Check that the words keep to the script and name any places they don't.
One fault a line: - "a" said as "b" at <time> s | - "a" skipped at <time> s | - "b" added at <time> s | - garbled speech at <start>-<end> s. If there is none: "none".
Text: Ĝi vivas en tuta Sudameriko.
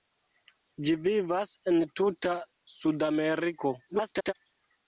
- garbled speech at 3.9-4.3 s